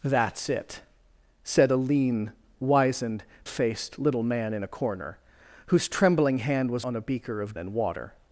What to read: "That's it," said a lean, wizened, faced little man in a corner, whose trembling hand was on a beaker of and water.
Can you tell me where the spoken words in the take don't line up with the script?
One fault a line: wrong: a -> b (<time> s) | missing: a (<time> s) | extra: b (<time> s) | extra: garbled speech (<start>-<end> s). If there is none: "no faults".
no faults